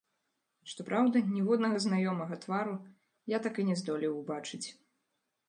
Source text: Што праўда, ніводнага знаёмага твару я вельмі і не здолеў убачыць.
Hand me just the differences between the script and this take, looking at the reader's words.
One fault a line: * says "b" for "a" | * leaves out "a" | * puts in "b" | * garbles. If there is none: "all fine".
* says "так" for "вельмі"